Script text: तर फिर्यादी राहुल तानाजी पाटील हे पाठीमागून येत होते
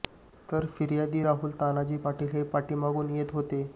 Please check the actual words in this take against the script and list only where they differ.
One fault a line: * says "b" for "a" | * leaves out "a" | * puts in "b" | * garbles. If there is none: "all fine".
all fine